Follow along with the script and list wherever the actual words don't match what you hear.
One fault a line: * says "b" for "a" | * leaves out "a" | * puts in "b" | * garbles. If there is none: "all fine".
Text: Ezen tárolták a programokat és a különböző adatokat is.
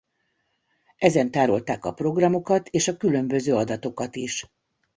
all fine